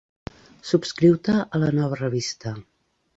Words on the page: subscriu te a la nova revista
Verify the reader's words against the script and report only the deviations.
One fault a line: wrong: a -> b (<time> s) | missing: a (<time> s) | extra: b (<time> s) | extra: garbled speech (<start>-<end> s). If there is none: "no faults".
no faults